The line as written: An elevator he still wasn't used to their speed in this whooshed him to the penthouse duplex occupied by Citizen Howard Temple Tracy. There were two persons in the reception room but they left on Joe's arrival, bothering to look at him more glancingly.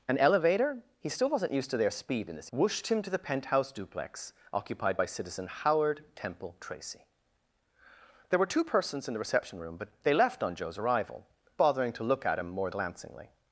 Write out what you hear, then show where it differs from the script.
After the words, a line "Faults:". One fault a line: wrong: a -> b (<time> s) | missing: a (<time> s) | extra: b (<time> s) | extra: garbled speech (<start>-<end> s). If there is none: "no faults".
An elevator he still wasn't used to their speed in this whooshed him to the penthouse duplex occupied by Citizen Howard Temple Tracy. There were two persons in the reception room but they left on Joe's arrival, bothering to look at him more glancingly.
Faults:
no faults